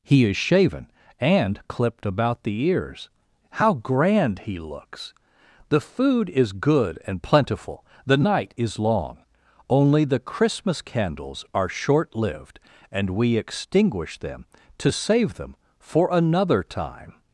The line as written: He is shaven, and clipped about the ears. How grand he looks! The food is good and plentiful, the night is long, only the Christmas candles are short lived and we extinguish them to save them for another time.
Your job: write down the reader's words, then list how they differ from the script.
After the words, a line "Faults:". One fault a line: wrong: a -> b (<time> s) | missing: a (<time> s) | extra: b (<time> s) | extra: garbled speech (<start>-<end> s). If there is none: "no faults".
He is shaven, and clipped about the ears. How grand he looks! The food is good and plentiful, the night is long, only the Christmas candles are short lived and we extinguish them to save them for another time.
Faults:
no faults